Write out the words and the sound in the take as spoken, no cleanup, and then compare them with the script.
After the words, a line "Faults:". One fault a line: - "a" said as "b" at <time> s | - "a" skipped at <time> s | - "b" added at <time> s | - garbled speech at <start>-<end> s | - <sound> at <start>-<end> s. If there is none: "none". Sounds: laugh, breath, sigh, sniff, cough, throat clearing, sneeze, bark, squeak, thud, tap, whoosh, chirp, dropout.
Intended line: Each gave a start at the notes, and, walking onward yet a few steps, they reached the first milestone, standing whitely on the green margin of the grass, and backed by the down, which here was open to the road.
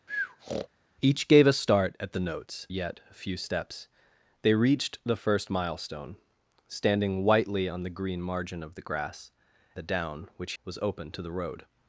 Each gave a start at the notes, yet a few steps, they reached the first milestone, standing whitely on the green margin of the grass, the down, which was open to the road.
Faults:
- breath at 0.1-0.7 s
- "and walking onward" skipped at 2.7 s
- "and backed by" skipped at 9.3 s
- "here" skipped at 10.5 s